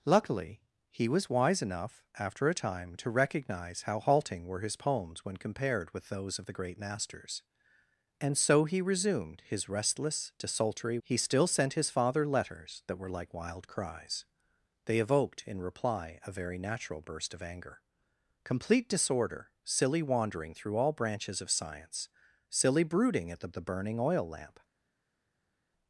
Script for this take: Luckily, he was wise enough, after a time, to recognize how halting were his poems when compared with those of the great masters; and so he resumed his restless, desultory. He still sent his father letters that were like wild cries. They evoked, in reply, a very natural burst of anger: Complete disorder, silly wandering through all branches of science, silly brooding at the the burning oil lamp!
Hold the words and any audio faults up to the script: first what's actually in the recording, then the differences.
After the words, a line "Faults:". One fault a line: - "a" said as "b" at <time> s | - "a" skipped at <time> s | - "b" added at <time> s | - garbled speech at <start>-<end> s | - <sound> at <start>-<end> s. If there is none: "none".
Luckily, he was wise enough, after a time, to recognize how halting were his poems when compared with those of the great masters; and so he resumed his restless, desultory. He still sent his father letters that were like wild cries. They evoked, in reply, a very natural burst of anger: Complete disorder, silly wandering through all branches of science, silly brooding at the the burning oil lamp!
Faults:
none